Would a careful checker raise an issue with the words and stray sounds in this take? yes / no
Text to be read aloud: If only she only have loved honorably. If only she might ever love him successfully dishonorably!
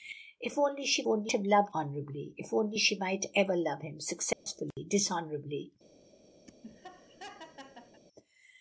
yes